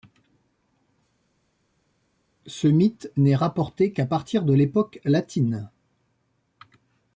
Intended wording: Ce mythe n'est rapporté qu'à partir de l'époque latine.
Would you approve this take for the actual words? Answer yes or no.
yes